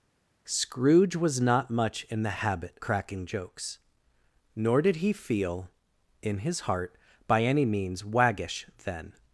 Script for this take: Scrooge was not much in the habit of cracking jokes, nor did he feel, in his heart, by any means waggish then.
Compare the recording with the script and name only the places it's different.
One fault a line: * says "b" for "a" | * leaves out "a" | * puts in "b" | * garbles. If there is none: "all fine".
* leaves out "of"